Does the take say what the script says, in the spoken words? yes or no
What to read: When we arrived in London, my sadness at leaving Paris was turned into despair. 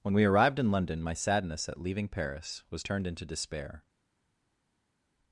yes